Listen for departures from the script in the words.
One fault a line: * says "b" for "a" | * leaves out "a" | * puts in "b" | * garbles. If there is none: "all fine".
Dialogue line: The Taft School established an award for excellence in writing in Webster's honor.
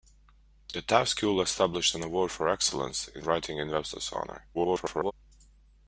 * garbles